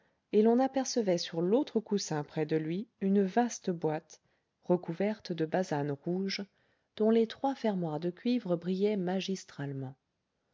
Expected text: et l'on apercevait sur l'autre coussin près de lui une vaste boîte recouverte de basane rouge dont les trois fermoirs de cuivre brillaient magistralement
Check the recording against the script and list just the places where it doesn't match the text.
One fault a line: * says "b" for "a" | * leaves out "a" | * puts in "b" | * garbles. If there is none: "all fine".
all fine